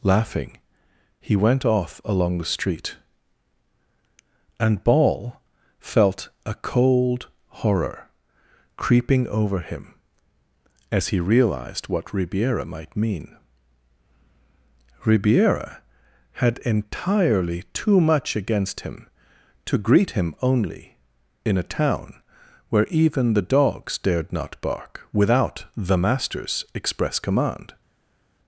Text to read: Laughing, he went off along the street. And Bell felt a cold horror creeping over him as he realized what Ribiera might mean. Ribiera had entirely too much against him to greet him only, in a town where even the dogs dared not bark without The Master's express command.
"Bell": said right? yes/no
no